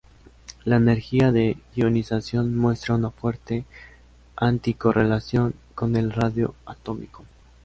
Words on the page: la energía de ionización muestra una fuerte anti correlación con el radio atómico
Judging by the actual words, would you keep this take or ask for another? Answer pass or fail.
pass